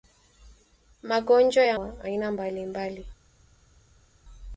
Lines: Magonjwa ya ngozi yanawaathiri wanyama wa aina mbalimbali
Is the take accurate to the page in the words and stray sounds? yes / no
no